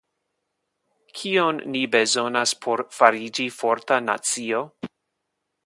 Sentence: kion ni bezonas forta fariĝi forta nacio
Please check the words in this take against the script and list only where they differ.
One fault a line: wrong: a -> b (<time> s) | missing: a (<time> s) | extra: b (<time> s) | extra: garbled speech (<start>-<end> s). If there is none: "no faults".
wrong: forta -> por (2.6 s)